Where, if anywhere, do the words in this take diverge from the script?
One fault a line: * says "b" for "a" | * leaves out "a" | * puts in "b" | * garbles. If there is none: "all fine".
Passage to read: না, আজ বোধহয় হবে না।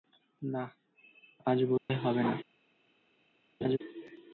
all fine